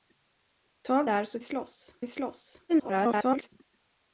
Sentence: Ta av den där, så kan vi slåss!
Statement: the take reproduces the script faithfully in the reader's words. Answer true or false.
false